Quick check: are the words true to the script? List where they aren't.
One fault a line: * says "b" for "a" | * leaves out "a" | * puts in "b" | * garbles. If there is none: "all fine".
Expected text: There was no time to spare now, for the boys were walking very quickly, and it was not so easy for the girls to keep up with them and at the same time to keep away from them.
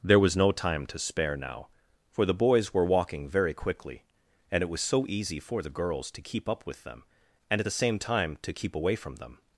* leaves out "not"